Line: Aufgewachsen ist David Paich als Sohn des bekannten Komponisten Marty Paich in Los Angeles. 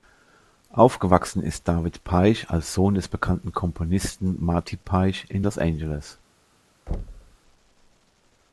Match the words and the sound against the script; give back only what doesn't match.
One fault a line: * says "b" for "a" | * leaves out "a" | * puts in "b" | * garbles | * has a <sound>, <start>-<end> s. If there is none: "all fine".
* has a thud, 6.9-7.4 s